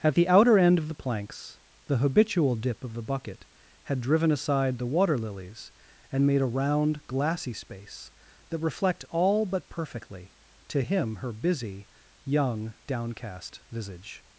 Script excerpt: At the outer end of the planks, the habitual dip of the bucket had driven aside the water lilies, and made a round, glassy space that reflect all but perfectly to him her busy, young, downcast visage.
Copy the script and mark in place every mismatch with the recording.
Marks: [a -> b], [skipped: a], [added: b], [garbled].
At the outer end of the planks, the habitual dip of the bucket had driven aside the water lilies, and made a round, glassy space that reflect all but perfectly to him her busy, young, downcast visage.